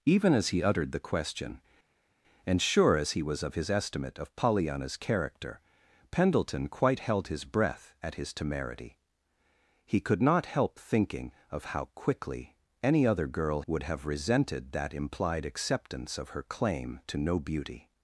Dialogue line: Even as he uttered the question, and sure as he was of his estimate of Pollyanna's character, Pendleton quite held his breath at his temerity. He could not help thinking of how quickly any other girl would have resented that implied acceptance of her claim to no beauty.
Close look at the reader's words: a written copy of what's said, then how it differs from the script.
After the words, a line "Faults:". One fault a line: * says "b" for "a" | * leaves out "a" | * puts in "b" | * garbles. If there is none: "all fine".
Even as he uttered the question, and sure as he was of his estimate of Pollyanna's character, Pendleton quite held his breath at his temerity. He could not help thinking of how quickly any other girl would have resented that implied acceptance of her claim to no beauty.
Faults:
all fine